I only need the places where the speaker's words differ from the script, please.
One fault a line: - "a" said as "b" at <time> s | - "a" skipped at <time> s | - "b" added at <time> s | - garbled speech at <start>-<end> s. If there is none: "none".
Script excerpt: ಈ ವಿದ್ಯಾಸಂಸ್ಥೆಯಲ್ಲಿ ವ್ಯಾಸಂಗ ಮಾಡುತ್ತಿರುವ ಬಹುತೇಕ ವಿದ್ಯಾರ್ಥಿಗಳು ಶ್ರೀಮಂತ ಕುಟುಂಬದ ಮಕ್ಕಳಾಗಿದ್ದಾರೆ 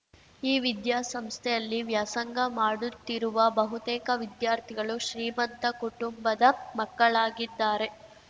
none